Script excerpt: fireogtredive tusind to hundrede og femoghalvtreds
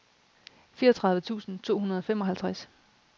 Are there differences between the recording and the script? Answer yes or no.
no